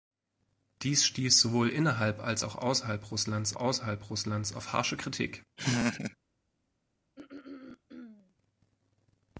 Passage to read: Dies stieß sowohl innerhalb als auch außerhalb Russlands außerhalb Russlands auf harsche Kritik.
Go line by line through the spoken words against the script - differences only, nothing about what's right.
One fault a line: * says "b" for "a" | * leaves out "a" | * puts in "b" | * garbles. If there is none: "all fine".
all fine